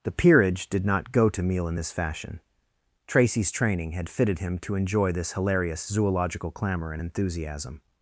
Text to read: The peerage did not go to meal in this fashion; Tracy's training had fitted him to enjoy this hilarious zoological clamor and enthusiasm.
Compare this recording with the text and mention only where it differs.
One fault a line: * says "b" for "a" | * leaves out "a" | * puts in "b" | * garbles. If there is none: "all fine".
all fine